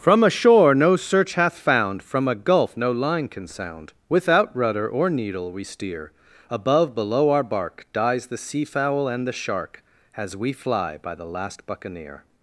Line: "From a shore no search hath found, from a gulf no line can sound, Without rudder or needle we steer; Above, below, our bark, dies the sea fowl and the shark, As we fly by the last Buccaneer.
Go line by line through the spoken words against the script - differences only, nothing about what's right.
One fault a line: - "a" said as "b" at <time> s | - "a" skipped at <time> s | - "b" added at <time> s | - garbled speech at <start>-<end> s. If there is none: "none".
none